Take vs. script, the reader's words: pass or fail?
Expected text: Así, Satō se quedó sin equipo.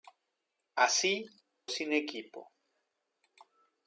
fail